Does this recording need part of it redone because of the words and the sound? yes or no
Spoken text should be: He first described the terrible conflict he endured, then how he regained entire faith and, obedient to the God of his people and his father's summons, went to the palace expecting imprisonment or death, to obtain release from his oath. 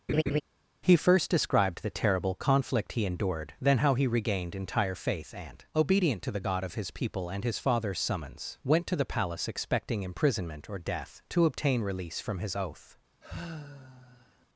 yes